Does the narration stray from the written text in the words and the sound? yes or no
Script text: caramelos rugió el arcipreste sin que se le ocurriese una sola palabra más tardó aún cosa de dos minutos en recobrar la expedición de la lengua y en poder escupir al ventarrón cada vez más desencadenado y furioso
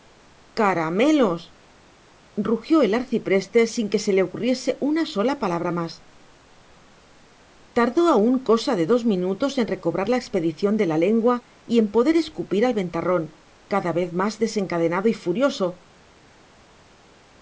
no